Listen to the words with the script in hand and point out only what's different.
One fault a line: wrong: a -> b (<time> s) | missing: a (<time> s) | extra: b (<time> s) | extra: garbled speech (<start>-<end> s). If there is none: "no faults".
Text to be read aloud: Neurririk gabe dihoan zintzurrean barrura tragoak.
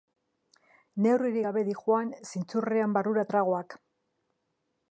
no faults